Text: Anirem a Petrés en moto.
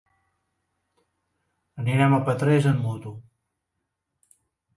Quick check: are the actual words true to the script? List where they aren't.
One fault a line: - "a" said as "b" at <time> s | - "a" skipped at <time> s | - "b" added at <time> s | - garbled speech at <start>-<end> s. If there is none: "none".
- "en" said as "amb" at 2.7 s